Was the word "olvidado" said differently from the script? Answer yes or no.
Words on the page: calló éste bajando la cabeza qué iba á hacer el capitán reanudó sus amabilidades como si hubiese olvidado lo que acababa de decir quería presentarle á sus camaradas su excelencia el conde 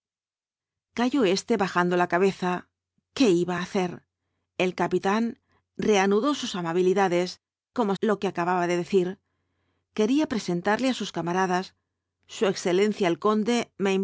yes